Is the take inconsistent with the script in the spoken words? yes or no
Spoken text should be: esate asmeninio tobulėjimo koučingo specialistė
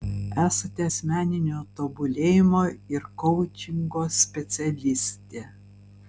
yes